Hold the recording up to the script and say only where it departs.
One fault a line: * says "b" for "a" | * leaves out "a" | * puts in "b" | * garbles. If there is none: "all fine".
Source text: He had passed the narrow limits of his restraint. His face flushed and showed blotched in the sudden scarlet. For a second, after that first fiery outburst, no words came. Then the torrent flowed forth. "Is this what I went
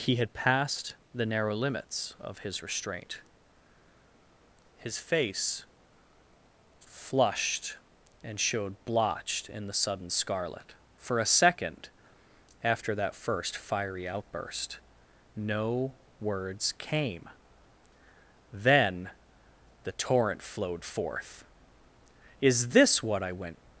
all fine